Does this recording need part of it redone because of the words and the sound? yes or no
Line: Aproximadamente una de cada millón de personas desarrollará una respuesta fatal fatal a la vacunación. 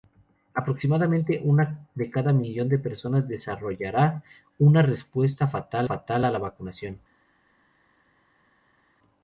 no